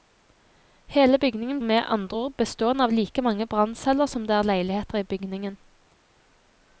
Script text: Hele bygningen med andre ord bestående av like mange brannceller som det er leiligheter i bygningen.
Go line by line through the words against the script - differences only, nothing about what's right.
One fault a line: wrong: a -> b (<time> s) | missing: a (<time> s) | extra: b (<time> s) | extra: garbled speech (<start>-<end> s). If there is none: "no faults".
no faults